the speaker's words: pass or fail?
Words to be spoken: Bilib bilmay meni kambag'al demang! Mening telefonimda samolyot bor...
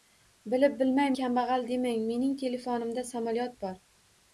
fail